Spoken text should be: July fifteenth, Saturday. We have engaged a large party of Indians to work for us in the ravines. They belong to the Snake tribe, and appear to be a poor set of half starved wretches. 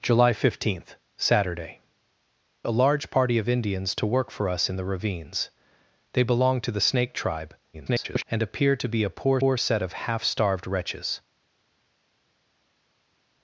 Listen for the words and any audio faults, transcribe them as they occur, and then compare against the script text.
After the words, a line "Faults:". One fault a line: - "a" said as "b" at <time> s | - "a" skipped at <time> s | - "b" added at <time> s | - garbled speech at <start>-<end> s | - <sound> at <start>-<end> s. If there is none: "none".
July fifteenth, Saturday. A large party of Indians to work for us in the ravines. They belong to the Snake tribe, [garbled] and appear to be a poor poor set of half starved wretches.
Faults:
- "We have engaged" skipped at 1.8 s
- garbled speech at 7.7-8.2 s
- "poor" added at 9.4 s